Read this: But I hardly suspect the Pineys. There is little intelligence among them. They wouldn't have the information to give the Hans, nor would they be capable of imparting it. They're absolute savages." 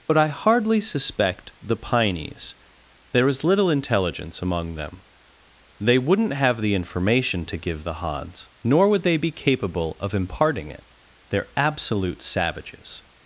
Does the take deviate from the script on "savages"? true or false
false